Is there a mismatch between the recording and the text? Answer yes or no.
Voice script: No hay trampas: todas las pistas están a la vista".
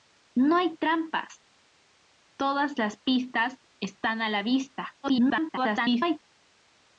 yes